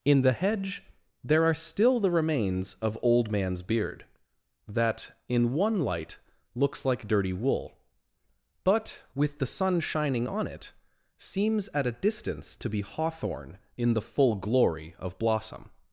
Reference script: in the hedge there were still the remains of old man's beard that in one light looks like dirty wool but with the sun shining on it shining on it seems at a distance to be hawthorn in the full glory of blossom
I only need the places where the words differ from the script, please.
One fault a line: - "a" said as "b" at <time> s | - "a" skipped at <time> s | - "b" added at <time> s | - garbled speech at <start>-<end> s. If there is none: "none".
- "were" said as "are" at 1.4 s
- "shining on it" skipped at 10.7 s